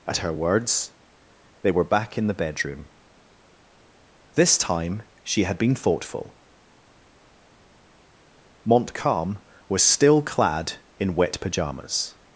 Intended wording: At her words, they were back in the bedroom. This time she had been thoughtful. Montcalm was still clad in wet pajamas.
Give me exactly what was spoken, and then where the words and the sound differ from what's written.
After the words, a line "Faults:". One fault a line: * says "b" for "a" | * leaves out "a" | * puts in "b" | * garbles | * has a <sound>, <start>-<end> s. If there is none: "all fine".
At her words, they were back in the bedroom. This time she had been thoughtful. Montcalm was still clad in wet pajamas.
Faults:
all fine